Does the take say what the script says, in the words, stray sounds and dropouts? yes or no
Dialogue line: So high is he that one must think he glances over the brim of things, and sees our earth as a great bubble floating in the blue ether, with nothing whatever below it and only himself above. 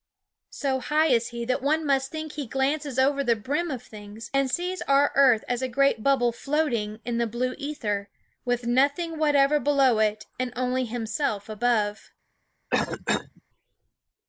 no